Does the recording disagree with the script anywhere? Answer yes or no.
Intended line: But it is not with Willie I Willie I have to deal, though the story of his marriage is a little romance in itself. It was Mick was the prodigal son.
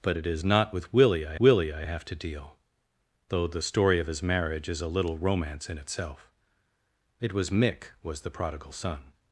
no